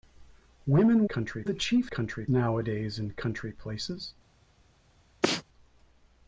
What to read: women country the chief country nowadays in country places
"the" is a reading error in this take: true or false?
false